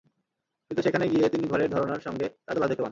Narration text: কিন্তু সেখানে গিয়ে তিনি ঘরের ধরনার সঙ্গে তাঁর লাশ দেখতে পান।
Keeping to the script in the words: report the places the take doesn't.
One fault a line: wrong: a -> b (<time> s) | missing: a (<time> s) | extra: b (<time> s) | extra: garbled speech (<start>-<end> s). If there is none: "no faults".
no faults